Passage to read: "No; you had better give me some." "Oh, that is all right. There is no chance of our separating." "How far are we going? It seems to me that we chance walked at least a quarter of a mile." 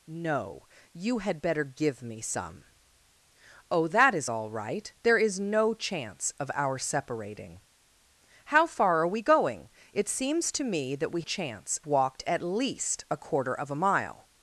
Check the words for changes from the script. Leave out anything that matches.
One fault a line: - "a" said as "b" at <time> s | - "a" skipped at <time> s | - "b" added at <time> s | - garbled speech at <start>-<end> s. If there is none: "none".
none